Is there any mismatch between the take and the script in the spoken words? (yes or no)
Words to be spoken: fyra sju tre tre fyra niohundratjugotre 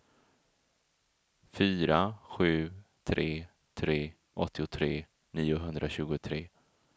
yes